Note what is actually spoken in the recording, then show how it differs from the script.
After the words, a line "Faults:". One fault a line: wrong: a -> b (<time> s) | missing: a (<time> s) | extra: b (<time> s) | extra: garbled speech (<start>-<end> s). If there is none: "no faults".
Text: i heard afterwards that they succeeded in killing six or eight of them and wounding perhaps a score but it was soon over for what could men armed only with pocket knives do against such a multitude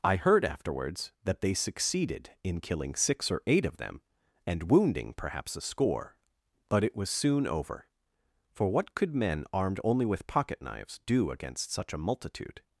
i heard afterwards that they succeeded in killing six or eight of them and wounding perhaps a score but it was soon over for what could men armed only with pocket knives do against such a multitude
Faults:
no faults